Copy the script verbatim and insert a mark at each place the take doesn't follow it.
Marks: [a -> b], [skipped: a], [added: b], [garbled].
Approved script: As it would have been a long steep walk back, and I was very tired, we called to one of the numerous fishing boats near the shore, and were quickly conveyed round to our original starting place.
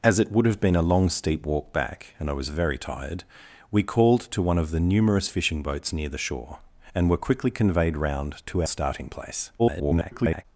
As it would have been a long steep walk back, and I was very tired, we called to one of the numerous fishing boats near the shore, and were quickly conveyed round to [skipped: our original] starting place. [garbled]